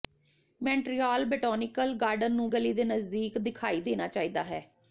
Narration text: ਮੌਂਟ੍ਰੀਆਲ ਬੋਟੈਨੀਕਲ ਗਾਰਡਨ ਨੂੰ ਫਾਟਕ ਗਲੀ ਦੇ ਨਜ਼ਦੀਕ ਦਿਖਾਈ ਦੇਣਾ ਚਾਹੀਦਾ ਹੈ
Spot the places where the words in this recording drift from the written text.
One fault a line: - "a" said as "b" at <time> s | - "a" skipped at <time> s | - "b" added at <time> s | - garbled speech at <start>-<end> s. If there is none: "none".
- "ਫਾਟਕ" skipped at 2.5 s